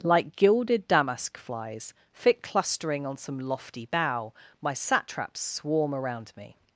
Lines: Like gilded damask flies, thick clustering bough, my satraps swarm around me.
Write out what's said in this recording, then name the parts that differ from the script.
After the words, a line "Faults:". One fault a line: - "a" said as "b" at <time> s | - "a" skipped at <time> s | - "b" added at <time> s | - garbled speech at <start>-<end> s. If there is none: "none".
Like gilded damask flies, thick clustering on some lofty bough, my satraps swarm around me.
Faults:
- "on some lofty" added at 3.0 s